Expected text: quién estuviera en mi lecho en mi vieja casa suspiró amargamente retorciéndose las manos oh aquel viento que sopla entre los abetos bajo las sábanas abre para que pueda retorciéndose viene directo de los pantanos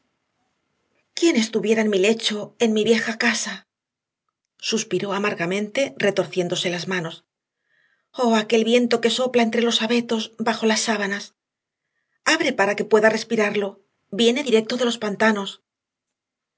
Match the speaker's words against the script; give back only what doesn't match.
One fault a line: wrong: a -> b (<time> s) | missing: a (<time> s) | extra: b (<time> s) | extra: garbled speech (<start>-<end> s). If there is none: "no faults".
wrong: retorciéndose -> respirarlo (13.2 s)